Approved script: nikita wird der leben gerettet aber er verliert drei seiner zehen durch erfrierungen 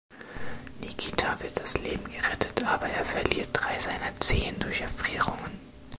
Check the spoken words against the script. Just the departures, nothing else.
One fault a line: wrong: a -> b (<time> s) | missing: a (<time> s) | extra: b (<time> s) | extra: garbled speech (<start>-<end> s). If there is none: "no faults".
wrong: der -> das (1.6 s)